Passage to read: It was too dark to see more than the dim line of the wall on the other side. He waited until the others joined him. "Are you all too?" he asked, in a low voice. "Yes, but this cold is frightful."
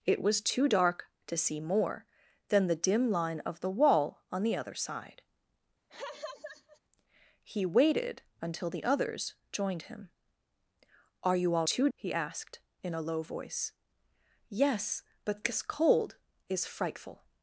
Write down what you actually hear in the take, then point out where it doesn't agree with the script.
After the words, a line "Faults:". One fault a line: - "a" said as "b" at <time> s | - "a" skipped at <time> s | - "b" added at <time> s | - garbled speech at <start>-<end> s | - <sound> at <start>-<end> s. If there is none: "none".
It was too dark to see more than the dim line of the wall on the other side. He waited until the others joined him. "Are you all too?" he asked, in a low voice. "Yes, but this cold is frightful."
Faults:
- laugh at 5.9-6.8 s